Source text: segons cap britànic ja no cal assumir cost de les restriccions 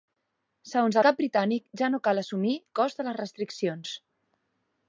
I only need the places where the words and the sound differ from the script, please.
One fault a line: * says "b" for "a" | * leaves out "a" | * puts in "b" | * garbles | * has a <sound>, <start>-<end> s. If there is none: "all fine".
all fine